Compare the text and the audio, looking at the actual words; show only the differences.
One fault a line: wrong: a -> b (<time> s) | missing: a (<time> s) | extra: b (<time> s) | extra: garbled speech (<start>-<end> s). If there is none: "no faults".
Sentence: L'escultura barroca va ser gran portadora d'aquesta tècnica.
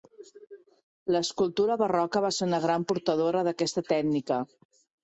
extra: una (2.5 s)